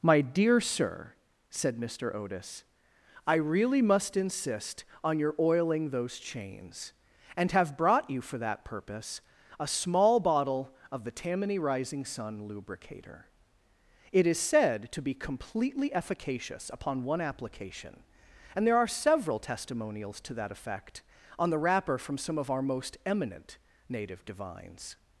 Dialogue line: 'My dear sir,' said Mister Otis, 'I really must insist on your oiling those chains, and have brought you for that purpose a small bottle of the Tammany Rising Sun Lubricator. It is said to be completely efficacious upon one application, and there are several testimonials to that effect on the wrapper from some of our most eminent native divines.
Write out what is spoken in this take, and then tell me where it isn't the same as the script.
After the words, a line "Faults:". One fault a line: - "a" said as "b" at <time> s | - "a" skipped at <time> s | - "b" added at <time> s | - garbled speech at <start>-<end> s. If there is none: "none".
'My dear sir,' said Mister Otis, 'I really must insist on your oiling those chains, and have brought you for that purpose a small bottle of the Tammany Rising Sun Lubricator. It is said to be completely efficacious upon one application, and there are several testimonials to that effect on the wrapper from some of our most eminent native divines.
Faults:
none